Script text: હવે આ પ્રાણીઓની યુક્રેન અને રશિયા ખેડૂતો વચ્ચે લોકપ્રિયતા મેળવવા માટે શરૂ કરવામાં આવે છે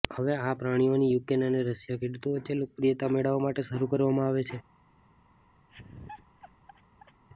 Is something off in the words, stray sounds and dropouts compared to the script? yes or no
yes